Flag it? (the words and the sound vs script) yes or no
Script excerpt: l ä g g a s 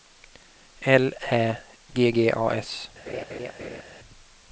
yes